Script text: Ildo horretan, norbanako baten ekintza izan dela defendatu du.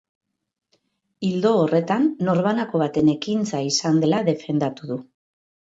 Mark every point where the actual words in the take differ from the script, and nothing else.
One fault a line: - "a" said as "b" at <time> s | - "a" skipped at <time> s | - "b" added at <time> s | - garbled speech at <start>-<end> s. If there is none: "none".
none